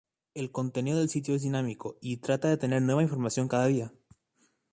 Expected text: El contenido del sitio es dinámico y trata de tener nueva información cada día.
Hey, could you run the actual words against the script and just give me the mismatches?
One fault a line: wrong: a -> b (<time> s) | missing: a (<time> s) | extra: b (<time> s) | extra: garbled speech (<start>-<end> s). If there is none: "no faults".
no faults